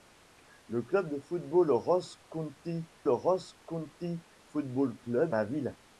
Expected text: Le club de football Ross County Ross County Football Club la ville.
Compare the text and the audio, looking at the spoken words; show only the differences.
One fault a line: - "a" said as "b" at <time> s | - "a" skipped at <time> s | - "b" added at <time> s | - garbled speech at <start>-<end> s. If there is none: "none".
none